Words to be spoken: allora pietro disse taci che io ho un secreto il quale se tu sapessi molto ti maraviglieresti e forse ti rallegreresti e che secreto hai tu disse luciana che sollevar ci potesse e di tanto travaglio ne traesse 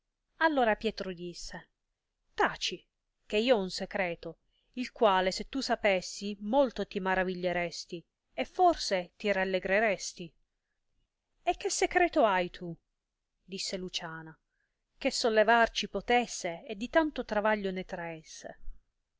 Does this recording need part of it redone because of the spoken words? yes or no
no